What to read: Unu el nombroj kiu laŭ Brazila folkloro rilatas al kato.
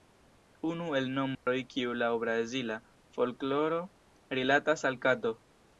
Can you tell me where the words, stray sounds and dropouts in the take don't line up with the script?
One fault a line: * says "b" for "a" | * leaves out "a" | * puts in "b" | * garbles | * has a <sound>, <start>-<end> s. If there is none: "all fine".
* has a dropout, 1.3-1.5 s